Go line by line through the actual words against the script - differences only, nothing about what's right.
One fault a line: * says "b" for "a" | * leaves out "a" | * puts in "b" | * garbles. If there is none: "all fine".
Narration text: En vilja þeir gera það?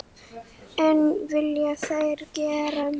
all fine